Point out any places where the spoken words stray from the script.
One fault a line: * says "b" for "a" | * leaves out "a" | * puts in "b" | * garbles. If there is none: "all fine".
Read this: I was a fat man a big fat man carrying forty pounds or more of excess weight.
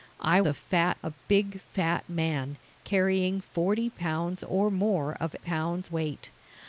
* leaves out "was"
* leaves out "man"
* says "pounds" for "excess"